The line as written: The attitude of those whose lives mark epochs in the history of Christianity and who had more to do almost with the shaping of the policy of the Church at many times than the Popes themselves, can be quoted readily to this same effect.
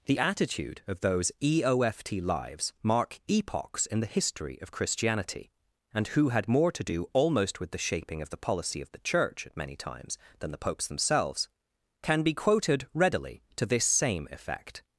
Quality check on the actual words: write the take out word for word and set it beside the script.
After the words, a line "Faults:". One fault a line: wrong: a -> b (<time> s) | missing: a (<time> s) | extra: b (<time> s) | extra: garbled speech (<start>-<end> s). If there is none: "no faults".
The attitude of those eoft lives mark epochs in the history of Christianity and who had more to do almost with the shaping of the policy of the Church at many times than the Popes themselves, can be quoted readily to this same effect.
Faults:
wrong: whose -> eoft (1.4 s)